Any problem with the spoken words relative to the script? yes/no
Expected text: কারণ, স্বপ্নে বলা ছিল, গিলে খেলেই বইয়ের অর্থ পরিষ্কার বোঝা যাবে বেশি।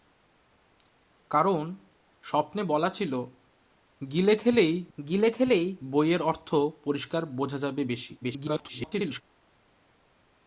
yes